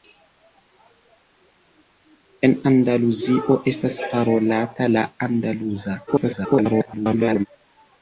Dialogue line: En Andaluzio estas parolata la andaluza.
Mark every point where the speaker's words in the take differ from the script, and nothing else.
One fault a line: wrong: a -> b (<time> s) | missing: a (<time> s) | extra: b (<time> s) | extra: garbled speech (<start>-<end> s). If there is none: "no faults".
extra: garbled speech (6.1-7.5 s)